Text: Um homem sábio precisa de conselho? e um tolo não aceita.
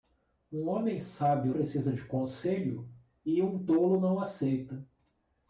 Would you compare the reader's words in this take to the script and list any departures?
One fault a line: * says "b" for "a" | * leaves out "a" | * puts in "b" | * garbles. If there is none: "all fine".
all fine